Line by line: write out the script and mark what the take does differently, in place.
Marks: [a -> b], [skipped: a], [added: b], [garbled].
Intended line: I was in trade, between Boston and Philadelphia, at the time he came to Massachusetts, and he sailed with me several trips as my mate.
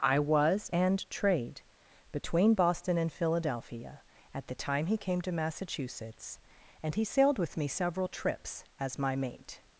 I was [in -> and] trade, between Boston and Philadelphia, at the time he came to Massachusetts, and he sailed with me several trips as my mate.